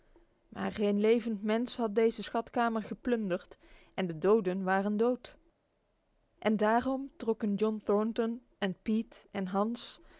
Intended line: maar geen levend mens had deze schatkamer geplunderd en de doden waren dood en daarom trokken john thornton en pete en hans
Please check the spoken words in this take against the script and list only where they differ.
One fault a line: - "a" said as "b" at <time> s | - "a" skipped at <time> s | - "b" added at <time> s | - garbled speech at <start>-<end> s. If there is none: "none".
none